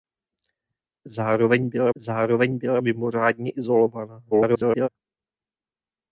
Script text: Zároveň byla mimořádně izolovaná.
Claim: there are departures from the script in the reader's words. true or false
true